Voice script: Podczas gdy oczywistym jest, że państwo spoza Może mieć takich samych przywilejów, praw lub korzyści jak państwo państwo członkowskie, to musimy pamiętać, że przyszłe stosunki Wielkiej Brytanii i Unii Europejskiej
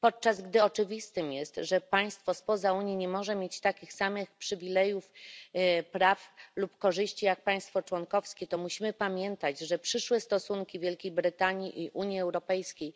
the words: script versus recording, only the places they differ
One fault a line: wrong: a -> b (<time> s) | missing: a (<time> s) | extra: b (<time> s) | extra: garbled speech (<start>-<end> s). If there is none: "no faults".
extra: Unii nie (2.7 s)
missing: państwo (7.8 s)